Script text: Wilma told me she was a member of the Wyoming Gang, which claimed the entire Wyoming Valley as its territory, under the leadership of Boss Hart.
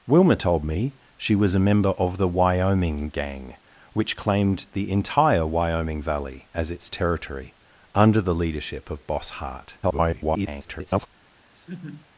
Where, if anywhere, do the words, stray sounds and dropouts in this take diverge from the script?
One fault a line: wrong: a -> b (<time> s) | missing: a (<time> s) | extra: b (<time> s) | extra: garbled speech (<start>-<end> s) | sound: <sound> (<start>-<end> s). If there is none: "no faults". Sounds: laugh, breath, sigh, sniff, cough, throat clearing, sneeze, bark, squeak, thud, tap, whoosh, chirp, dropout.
extra: garbled speech (9.8-11.1 s)
sound: laugh (11.5-12.1 s)